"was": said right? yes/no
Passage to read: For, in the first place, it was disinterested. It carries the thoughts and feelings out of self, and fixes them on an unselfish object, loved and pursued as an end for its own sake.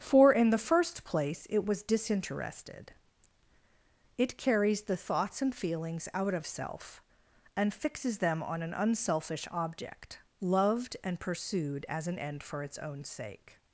yes